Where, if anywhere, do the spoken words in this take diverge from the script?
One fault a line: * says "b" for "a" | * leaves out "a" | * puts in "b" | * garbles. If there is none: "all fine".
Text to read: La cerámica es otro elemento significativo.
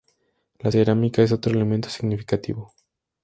all fine